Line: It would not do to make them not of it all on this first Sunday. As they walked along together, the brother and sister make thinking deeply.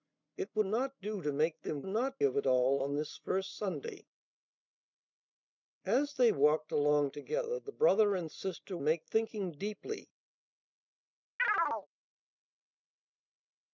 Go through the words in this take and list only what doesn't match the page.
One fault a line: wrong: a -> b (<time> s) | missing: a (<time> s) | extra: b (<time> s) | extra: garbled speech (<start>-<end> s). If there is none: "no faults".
no faults